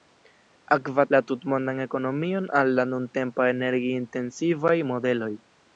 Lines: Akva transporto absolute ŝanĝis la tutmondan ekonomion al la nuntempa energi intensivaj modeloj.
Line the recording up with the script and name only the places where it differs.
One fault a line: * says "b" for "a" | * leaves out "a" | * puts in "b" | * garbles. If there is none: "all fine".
* leaves out "transporto absolute ŝanĝis"